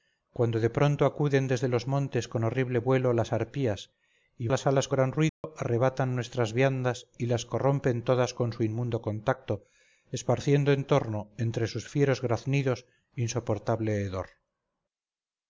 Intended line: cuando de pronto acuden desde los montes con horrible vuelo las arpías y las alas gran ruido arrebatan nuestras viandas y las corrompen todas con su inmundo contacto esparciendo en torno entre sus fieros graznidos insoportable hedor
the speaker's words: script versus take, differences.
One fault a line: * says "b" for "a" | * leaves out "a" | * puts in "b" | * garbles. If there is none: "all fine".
all fine